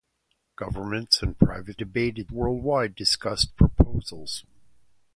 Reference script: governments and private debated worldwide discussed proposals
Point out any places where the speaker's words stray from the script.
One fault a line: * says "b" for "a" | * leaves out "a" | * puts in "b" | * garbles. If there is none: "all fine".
all fine